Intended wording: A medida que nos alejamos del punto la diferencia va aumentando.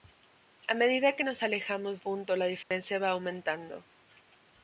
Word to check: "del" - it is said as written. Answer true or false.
false